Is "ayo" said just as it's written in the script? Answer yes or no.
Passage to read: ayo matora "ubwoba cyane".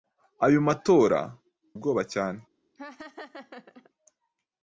yes